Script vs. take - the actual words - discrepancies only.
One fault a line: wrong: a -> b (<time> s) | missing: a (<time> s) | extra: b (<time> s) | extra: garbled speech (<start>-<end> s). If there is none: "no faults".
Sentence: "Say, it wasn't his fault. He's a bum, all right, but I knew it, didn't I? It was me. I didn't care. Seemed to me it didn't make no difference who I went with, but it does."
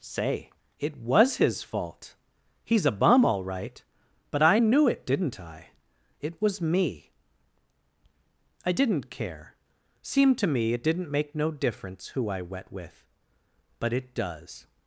wrong: wasn't -> was (1.0 s)
wrong: went -> wet (12.4 s)